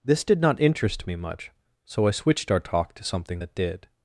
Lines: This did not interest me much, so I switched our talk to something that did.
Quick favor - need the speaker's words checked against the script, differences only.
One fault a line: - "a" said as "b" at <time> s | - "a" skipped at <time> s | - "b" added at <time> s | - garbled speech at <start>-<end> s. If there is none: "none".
none